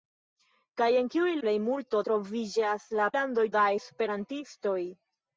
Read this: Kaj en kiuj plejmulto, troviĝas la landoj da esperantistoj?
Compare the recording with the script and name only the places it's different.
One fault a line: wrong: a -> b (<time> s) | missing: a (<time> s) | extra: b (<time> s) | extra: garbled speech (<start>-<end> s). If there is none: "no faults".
no faults